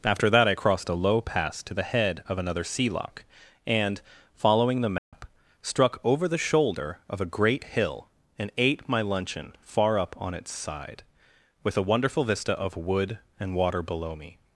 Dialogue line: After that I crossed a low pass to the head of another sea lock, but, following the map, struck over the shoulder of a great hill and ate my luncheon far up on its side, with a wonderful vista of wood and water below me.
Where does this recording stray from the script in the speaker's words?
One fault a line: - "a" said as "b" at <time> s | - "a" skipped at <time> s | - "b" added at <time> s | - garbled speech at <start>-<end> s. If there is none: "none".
- "but" said as "and" at 3.7 s